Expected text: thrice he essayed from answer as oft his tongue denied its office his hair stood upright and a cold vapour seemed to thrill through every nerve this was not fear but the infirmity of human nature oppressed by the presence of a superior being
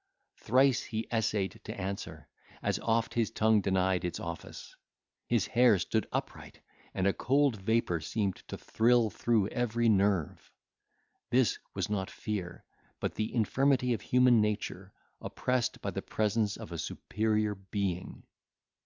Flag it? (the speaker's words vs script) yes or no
yes